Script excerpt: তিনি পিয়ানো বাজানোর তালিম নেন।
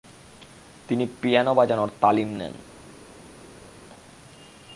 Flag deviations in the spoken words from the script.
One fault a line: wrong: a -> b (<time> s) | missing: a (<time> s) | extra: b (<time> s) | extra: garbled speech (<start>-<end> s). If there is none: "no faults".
no faults